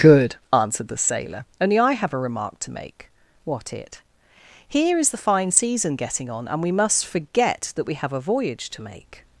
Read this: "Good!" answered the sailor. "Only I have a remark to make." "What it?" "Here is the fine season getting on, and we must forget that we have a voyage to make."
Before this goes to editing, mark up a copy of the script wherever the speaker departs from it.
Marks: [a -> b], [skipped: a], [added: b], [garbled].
"Good!" answered the sailor. "Only I have a remark to make." "What it?" "Here is the fine season getting on, and we must forget that we have a voyage to make."